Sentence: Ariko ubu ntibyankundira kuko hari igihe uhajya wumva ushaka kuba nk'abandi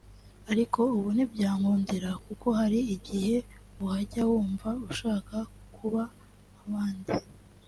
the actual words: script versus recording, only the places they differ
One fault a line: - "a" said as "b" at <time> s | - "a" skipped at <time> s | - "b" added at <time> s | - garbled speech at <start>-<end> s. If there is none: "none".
none